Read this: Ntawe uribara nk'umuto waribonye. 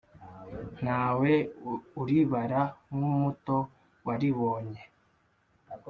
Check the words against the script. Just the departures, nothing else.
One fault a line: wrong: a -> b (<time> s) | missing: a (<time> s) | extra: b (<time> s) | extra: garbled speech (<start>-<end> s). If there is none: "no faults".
no faults